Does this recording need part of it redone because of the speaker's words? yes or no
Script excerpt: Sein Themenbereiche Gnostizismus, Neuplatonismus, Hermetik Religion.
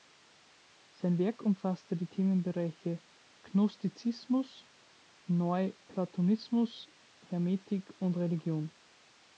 yes